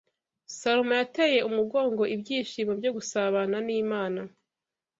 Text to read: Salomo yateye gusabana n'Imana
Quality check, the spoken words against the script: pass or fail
fail